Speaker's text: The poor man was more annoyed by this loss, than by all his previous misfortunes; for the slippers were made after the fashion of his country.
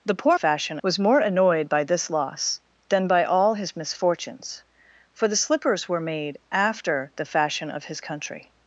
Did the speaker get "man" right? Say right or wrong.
wrong